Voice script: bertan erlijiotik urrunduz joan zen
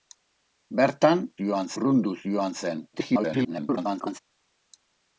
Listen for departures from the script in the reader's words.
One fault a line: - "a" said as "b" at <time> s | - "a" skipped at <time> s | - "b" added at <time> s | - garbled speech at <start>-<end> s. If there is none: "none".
- "erlijiotik" said as "joan" at 1.4 s
- garbled speech at 2.9-4.2 s